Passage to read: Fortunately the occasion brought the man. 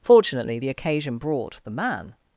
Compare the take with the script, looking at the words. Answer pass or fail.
pass